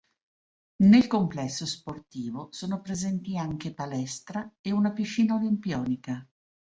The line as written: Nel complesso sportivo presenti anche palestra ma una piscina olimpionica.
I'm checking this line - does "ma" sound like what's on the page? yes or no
no